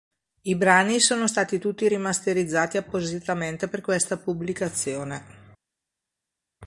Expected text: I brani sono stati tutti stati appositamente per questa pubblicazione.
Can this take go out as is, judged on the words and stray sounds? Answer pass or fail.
fail